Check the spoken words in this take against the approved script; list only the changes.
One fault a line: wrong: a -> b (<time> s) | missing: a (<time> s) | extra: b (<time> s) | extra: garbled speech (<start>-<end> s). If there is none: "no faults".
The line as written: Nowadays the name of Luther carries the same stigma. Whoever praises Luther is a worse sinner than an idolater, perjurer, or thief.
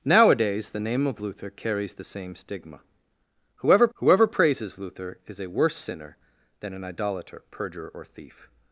extra: whoever (3.9 s)